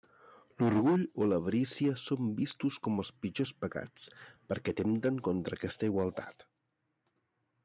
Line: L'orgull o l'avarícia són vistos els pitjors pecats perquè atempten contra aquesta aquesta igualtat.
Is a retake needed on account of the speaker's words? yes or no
yes